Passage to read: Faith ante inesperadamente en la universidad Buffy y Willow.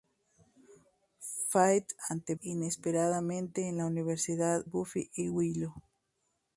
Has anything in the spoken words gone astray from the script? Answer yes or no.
no